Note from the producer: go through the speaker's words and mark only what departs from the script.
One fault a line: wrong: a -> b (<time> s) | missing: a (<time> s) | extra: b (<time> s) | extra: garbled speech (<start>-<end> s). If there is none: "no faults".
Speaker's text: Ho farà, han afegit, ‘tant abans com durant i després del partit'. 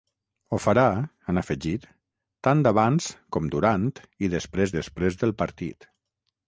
extra: després (4.8 s)